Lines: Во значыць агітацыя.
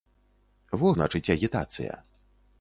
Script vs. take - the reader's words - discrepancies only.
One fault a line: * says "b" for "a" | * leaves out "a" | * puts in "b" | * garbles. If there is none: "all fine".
all fine